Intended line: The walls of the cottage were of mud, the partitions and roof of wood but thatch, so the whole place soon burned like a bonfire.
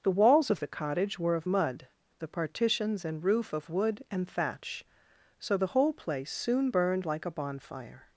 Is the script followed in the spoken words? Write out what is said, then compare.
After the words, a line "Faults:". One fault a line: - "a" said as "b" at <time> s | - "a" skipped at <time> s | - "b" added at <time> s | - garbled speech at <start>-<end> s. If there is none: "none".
The walls of the cottage were of mud, the partitions and roof of wood and thatch, so the whole place soon burned like a bonfire.
Faults:
- "but" said as "and" at 4.1 s